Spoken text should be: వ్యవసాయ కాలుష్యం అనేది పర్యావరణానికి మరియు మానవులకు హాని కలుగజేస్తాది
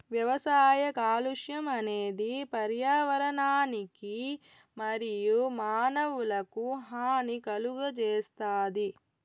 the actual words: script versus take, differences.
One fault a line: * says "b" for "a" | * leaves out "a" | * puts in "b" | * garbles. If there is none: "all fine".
all fine